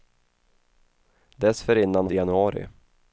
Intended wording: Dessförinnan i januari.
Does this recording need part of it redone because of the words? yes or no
no